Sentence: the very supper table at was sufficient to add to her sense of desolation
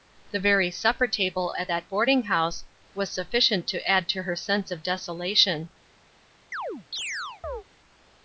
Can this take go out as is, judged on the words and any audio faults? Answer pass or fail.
fail